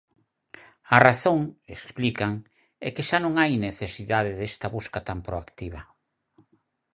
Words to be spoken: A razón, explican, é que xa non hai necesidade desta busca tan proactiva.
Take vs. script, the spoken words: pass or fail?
pass